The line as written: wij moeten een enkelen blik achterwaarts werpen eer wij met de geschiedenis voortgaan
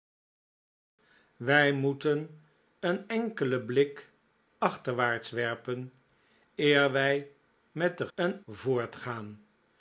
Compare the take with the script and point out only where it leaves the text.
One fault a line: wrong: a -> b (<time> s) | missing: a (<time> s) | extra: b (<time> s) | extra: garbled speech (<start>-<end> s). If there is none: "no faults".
wrong: geschiedenis -> een (8.1 s)